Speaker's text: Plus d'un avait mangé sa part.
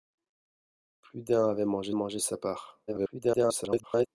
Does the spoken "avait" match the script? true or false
true